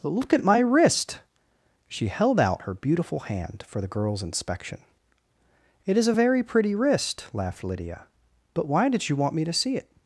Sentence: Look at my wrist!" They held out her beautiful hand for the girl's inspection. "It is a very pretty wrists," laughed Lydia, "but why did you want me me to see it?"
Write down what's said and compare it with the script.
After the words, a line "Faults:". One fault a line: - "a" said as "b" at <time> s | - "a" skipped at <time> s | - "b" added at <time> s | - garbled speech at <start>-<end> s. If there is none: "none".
Look at my wrist!" She held out her beautiful hand for the girl's inspection. "It is a very pretty wrist," laughed Lydia, "but why did you want me to see it?"
Faults:
- "They" said as "She" at 1.9 s
- "wrists" said as "wrist" at 6.7 s
- "me" skipped at 9.4 s